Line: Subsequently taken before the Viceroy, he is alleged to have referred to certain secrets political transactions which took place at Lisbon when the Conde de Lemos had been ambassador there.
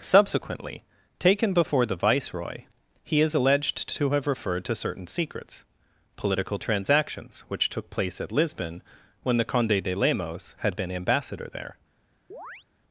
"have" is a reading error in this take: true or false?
false